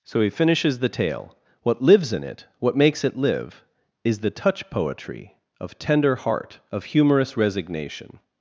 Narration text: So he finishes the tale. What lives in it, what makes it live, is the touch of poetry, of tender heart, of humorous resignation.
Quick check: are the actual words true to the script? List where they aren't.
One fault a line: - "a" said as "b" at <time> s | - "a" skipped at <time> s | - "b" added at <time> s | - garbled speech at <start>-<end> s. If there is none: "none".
- "of" skipped at 4.7 s